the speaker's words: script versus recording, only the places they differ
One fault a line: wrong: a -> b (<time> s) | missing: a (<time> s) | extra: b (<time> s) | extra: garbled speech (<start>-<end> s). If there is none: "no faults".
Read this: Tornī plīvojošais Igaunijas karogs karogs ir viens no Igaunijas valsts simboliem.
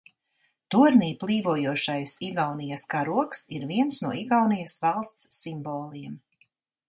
missing: karogs (3.4 s)